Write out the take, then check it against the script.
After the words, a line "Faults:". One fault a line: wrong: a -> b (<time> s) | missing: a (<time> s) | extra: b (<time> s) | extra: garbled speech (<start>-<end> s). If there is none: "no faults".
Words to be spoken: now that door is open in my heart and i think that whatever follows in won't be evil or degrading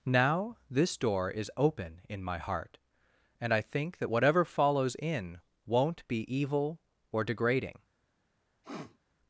now this door is open in my heart and i think that whatever follows in won't be evil or degrading
Faults:
wrong: that -> this (0.7 s)